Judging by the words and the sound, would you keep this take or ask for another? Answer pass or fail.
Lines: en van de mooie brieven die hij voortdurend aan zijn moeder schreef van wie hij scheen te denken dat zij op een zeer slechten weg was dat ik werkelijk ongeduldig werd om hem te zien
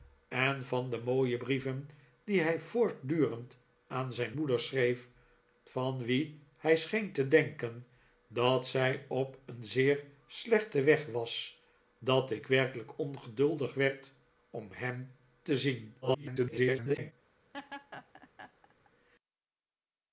fail